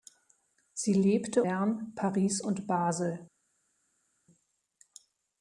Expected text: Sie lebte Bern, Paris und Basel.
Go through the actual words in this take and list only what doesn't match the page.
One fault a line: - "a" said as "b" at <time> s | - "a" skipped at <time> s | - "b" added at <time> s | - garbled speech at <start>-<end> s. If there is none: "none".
none